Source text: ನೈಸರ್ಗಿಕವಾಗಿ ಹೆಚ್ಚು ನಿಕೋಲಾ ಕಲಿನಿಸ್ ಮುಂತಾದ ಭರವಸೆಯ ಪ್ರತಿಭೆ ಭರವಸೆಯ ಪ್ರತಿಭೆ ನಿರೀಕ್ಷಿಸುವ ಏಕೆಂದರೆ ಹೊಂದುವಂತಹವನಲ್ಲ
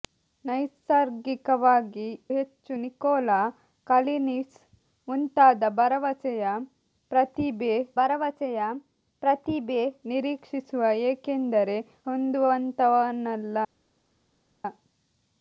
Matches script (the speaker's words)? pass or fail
pass